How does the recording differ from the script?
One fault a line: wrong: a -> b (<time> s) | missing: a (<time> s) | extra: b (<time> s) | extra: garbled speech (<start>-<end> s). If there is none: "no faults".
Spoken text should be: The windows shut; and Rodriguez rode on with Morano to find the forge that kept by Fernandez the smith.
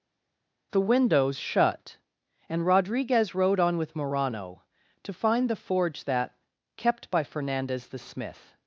no faults